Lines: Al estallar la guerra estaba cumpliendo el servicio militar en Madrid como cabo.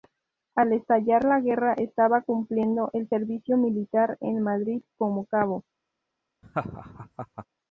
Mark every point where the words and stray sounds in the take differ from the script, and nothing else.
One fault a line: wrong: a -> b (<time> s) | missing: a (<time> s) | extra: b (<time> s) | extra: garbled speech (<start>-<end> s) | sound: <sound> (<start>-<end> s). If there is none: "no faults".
sound: laugh (6.4-7.5 s)